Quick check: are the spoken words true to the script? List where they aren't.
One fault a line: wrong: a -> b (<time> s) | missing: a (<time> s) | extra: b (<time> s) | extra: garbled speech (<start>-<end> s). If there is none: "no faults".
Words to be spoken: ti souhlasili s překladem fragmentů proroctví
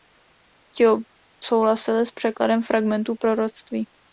no faults